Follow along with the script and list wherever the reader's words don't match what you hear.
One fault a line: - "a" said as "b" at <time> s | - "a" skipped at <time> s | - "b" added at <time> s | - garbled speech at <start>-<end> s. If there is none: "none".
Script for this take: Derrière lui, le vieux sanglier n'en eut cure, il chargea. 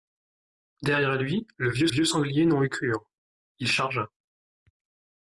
- "vieux" added at 1.9 s